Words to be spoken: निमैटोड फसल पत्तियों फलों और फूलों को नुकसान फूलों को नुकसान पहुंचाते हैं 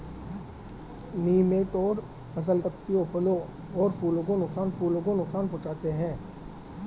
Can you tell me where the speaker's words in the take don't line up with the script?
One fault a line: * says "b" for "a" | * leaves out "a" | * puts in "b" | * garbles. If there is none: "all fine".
all fine